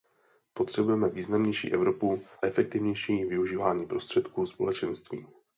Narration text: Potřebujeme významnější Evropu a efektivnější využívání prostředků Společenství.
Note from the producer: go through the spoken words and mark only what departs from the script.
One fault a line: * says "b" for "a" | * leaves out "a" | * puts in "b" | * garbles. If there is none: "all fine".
* leaves out "a"